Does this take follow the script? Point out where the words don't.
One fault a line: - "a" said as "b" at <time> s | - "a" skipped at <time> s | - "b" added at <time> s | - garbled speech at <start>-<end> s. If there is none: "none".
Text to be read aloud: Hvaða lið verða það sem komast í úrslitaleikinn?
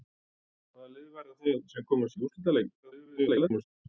- garbled speech at 2.8-3.6 s